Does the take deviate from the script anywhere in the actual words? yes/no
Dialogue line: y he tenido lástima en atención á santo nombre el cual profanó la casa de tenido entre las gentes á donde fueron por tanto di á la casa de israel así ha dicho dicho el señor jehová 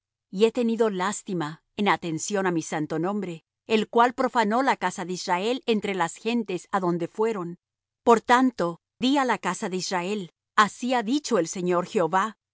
yes